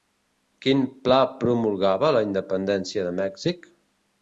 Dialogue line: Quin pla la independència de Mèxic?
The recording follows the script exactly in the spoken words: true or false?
false